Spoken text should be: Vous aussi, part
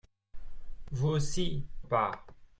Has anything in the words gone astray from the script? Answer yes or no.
no